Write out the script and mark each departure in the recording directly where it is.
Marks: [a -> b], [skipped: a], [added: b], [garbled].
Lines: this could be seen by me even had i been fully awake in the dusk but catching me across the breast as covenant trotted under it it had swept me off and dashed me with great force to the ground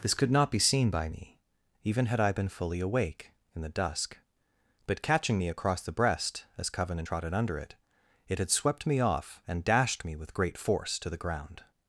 this could [added: not] be seen by me even had i been fully awake in the dusk but catching me across the breast as covenant trotted under it it had swept me off and dashed me with great force to the ground